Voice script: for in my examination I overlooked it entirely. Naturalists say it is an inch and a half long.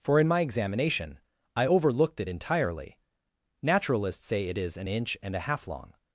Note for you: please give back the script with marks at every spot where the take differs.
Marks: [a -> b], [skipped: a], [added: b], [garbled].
for in my examination I overlooked it entirely. Naturalists say it is an inch and a half long.